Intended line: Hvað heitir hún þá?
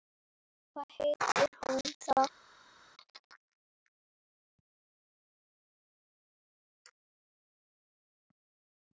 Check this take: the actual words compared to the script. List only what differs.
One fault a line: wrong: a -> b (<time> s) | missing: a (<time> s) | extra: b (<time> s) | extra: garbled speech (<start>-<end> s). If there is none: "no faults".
no faults